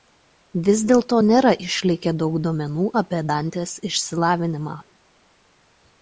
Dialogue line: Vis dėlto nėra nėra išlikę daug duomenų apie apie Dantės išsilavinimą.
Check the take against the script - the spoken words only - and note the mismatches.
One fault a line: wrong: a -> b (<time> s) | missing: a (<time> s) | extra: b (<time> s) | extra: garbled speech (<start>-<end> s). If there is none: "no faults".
missing: nėra (1.5 s)
missing: apie (3.2 s)